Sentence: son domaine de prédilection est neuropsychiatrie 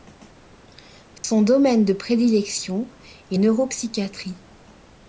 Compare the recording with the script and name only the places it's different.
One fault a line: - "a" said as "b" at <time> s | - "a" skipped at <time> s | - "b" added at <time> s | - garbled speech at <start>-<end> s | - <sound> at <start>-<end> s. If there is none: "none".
- dropout at 1.2-1.2 s